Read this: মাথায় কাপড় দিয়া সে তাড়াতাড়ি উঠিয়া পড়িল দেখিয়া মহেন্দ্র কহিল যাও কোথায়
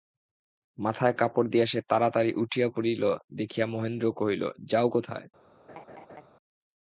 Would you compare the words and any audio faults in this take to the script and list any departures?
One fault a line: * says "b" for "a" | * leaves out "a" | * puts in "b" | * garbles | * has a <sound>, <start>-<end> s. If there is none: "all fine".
* has a laugh, 5.7-6.3 s